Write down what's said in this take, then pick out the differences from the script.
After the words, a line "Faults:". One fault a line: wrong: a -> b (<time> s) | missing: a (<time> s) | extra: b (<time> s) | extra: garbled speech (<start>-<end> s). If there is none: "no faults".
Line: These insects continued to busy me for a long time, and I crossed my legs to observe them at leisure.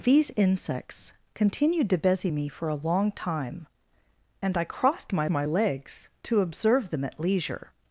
These insects continued to busy me for a long time, and I crossed my my legs to observe them at leisure.
Faults:
extra: my (5.3 s)